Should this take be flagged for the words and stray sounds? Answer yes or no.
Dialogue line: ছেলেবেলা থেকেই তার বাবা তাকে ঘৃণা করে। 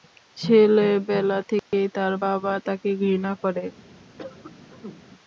yes